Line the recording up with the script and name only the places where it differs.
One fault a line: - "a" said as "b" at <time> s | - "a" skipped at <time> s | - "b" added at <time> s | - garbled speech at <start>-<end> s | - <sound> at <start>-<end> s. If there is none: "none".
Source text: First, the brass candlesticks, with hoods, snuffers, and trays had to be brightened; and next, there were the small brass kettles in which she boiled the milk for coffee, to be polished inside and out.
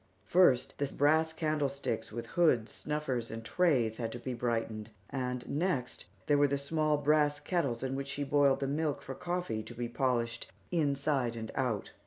none